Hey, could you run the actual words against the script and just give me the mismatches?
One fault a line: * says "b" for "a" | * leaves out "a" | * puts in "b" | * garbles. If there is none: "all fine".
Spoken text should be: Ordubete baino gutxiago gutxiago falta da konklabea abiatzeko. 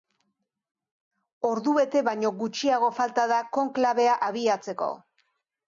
* leaves out "gutxiago"